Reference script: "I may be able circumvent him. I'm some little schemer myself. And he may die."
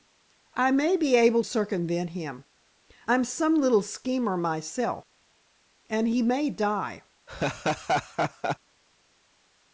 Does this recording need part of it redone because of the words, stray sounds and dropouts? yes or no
yes